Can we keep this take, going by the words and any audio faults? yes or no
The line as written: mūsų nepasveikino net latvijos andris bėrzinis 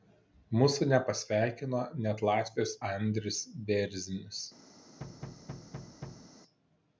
no